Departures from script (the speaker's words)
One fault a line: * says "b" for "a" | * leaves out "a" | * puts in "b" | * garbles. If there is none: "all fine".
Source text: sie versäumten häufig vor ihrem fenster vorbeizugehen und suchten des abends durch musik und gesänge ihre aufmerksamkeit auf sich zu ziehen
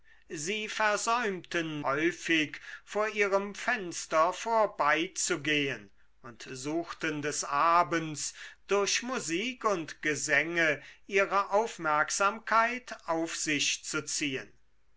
all fine